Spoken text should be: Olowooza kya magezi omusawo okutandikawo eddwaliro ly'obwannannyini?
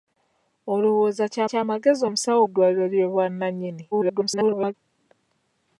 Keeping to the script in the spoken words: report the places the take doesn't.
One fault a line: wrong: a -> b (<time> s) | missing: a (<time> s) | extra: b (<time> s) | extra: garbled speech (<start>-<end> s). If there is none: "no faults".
extra: kya (1.5 s)
missing: okutandikawo (2.4 s)
extra: garbled speech (3.9-4.7 s)